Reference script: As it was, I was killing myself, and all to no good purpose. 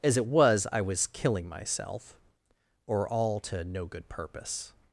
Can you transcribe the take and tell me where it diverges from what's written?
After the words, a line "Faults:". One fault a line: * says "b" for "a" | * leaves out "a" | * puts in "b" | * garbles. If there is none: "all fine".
As it was, I was killing myself, or all to no good purpose.
Faults:
* says "or" for "and"